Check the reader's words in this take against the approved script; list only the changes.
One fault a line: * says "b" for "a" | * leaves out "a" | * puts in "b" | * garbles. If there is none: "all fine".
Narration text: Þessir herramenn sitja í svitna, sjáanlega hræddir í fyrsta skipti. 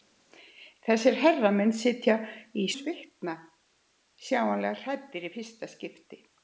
all fine